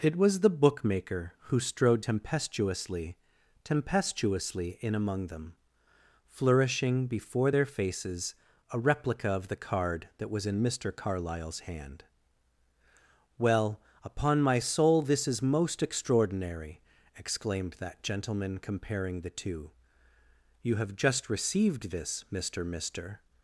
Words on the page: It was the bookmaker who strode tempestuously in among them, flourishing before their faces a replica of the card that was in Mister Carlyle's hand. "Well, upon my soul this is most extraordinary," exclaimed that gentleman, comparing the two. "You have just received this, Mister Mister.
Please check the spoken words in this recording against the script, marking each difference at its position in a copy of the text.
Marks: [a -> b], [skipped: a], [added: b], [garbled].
It was the bookmaker who strode tempestuously [added: tempestuously] in among them, flourishing before their faces a replica of the card that was in Mister Carlyle's hand. "Well, upon my soul this is most extraordinary," exclaimed that gentleman, comparing the two. "You have just received this, Mister Mister.